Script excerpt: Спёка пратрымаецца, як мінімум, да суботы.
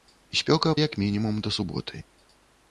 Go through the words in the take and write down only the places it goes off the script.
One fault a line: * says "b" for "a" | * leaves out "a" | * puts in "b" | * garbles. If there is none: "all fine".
* leaves out "пратрымаецца"